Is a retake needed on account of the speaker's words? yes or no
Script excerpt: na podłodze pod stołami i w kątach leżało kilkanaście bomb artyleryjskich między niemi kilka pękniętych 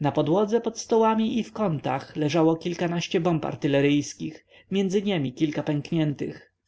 no